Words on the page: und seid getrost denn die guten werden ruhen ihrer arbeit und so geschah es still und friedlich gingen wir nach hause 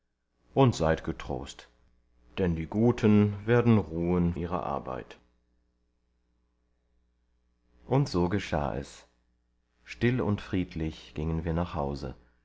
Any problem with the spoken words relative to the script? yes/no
no